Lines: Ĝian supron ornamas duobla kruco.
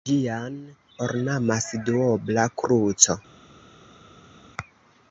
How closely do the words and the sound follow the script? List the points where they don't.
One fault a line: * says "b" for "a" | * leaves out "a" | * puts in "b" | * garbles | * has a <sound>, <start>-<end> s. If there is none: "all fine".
* leaves out "supron"